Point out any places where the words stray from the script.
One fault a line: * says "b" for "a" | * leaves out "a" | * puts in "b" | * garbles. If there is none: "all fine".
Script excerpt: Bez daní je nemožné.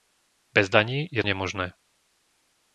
all fine